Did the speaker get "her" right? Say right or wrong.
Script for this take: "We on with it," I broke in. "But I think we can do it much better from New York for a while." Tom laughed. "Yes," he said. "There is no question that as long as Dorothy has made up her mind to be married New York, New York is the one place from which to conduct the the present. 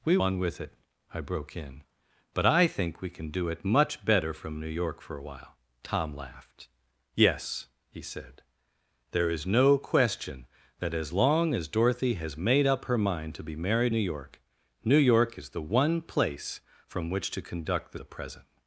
right